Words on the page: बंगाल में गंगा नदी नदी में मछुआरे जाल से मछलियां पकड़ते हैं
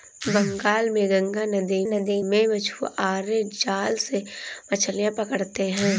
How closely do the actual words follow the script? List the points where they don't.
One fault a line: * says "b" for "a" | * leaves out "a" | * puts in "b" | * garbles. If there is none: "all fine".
all fine